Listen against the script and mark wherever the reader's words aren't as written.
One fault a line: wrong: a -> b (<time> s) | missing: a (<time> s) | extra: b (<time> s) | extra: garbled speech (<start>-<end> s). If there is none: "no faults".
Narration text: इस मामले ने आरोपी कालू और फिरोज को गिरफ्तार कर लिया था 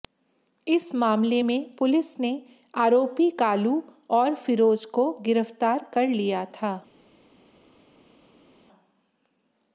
extra: में पुलिस (1.4 s)